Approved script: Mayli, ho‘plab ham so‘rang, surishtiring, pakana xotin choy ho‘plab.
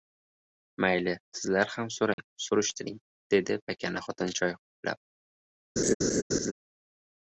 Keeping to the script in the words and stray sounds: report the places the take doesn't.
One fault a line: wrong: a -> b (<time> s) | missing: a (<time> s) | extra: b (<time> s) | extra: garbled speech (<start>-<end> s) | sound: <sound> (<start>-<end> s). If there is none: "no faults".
wrong: ho‘plab -> sizlar (1.4 s)
sound: dropout (2.1-2.2 s)
extra: dedi (3.4 s)
sound: laugh (5.8-6.5 s)